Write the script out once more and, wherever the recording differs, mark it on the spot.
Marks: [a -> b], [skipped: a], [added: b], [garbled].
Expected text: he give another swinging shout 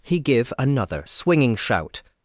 he give another swinging shout